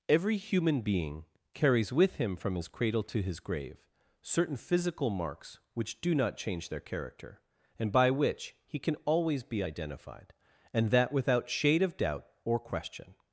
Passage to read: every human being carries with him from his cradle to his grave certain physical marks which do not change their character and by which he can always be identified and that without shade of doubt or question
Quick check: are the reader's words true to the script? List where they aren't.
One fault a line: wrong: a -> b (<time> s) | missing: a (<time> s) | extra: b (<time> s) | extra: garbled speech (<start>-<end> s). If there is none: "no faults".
no faults